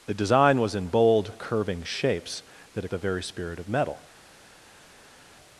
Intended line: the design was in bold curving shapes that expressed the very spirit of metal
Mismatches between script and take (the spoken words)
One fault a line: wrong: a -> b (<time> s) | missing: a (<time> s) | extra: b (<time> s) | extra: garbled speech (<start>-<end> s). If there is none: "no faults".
missing: expressed (2.9 s)